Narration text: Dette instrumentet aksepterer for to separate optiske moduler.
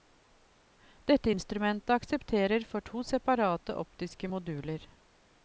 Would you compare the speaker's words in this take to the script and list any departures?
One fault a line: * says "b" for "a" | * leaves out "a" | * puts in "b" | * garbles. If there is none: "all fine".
all fine